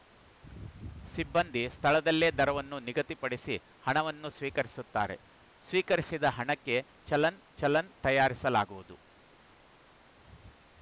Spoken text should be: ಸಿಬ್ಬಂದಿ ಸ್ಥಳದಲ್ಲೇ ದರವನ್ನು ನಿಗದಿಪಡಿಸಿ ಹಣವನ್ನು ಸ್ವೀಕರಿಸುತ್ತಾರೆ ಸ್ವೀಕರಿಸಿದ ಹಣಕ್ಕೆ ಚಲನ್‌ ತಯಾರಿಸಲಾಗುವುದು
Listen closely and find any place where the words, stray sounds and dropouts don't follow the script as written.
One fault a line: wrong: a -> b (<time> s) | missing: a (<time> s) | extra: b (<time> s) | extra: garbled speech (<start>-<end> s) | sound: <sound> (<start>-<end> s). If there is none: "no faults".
extra: ಚಲನ್ (7.6 s)